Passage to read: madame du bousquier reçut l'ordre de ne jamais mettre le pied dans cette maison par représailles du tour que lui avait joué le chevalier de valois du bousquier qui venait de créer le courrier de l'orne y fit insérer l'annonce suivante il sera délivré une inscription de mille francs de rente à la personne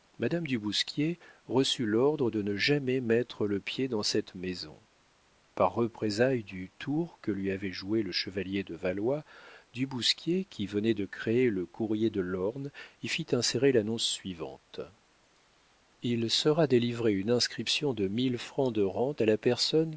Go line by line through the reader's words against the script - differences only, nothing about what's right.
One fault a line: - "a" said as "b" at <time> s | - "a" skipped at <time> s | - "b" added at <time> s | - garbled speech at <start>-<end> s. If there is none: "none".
none